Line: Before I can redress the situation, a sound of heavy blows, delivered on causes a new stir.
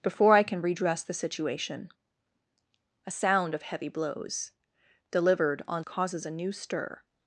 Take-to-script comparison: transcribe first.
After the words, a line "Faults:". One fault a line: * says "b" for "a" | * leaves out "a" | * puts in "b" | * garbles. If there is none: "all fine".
Before I can redress the situation, a sound of heavy blows, delivered on causes a new stir.
Faults:
all fine